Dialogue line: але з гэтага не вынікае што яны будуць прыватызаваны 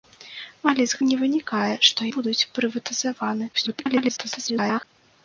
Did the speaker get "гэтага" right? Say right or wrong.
wrong